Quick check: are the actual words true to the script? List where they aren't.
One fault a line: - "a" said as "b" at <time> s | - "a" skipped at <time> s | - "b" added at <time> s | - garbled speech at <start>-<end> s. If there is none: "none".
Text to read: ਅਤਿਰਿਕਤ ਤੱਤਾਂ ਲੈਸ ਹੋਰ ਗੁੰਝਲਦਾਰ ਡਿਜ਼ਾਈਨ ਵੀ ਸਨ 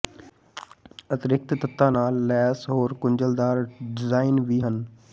- "ਨਾਲ" added at 1.9 s
- "ਸਨ" said as "ਹਨ" at 4.6 s